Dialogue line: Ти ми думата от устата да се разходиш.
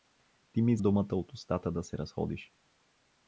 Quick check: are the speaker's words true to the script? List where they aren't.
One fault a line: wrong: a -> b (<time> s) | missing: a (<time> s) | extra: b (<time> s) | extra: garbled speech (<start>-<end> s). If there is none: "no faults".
no faults